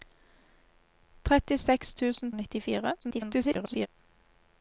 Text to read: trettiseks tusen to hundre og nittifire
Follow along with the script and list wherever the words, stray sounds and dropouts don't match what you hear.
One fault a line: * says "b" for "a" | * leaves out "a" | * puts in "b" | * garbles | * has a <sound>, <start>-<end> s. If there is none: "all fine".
* leaves out "to hundre"
* garbles